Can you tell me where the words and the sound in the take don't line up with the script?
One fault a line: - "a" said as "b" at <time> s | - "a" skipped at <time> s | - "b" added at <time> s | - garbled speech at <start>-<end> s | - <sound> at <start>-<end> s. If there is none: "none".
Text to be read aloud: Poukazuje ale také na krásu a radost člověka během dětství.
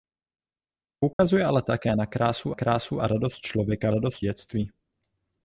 - dropout at 1.1-1.2 s
- "krásu" added at 2.5 s
- "během" said as "radost" at 3.9 s